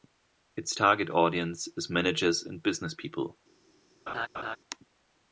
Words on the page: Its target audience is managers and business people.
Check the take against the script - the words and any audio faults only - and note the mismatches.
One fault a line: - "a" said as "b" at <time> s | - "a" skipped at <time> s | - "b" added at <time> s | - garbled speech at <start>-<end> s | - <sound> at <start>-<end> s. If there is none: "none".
- laugh at 4.1-4.6 s